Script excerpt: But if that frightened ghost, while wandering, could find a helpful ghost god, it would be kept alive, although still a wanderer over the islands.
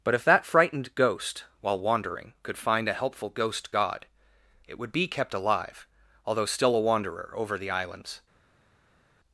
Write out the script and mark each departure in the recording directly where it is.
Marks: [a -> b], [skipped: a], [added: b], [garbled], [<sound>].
But if that frightened ghost, while wandering, could find a helpful ghost god, it would be kept alive, although still a wanderer over the islands.